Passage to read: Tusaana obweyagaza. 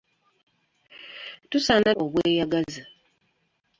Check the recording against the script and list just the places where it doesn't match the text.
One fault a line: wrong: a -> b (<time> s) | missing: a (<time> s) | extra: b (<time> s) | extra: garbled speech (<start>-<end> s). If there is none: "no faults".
no faults